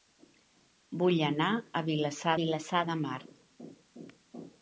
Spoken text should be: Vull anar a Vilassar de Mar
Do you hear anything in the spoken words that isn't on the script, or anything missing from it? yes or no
yes